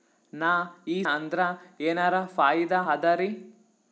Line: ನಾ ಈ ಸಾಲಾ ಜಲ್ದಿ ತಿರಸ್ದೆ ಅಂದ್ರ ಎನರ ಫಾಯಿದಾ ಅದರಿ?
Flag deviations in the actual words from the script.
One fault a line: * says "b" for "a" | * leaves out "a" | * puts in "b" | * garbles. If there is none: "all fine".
* leaves out "ಸಾಲಾ ಜಲ್ದಿ ತಿರಸ್ದೆ"